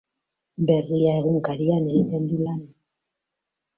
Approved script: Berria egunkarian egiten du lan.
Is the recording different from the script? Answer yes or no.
no